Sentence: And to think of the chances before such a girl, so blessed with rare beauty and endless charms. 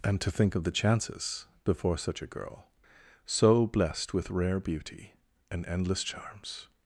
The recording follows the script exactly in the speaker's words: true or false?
true